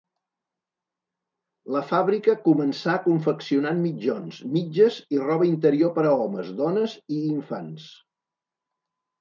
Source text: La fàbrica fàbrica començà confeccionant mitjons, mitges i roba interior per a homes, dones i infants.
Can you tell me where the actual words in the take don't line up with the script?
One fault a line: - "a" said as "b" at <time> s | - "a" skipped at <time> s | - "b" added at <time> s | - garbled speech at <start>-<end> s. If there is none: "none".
- "fàbrica" skipped at 2.4 s